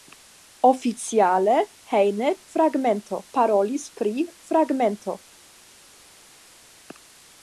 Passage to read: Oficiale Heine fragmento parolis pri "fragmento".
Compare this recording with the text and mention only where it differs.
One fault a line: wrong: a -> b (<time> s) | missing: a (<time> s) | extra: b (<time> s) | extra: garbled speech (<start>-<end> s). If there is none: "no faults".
no faults